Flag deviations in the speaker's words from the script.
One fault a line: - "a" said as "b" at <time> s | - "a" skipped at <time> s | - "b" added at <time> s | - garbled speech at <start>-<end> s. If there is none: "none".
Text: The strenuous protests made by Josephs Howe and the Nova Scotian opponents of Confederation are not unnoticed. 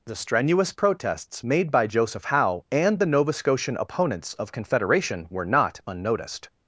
- "Josephs" said as "Joseph" at 1.9 s
- "are" said as "were" at 5.3 s